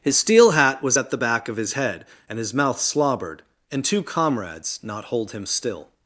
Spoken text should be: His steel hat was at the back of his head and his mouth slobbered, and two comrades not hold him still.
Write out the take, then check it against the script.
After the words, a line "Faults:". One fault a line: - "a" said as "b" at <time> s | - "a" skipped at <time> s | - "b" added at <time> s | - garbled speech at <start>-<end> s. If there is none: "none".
His steel hat was at the back of his head and his mouth slobbered, and two comrades not hold him still.
Faults:
none